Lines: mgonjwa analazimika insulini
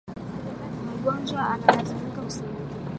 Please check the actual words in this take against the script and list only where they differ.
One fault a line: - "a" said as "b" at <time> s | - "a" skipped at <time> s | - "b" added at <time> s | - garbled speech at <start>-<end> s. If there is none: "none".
none